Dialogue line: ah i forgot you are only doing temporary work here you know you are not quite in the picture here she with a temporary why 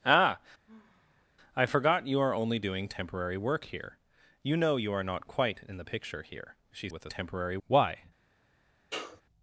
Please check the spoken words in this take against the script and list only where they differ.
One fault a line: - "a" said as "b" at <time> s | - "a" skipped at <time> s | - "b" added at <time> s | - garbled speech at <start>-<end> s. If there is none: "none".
none